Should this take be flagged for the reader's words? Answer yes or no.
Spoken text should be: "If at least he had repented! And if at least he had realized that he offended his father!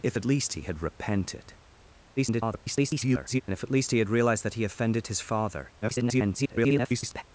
yes